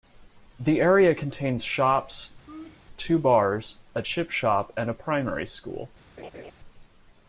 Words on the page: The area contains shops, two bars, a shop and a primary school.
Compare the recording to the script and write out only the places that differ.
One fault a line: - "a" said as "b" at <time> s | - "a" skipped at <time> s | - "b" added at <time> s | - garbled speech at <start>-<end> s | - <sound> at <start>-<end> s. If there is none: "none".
- laugh at 2.5-2.8 s
- "chip" added at 4.0 s
- laugh at 6.2-6.5 s